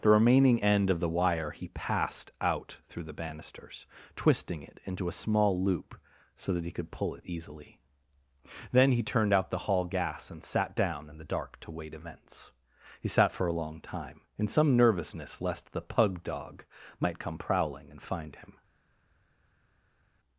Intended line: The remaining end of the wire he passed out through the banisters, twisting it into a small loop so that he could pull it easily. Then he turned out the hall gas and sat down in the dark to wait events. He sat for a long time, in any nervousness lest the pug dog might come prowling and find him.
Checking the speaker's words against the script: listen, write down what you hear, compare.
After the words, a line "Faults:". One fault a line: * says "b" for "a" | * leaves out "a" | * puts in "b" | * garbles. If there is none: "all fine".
The remaining end of the wire he passed out through the banisters, twisting it into a small loop so that he could pull it easily. Then he turned out the hall gas and sat down in the dark to wait events. He sat for a long time, in some nervousness lest the pug dog might come prowling and find him.
Faults:
* says "some" for "any"